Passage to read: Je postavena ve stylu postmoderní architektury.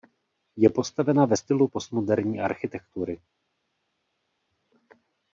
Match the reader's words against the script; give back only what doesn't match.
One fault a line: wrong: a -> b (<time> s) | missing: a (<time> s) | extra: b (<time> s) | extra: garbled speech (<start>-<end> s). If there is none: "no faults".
no faults